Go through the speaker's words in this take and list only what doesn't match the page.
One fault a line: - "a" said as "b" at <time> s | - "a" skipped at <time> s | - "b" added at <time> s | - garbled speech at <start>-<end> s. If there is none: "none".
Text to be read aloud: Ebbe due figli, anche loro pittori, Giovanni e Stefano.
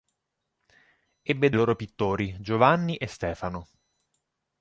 - "due figli anche" skipped at 1.5 s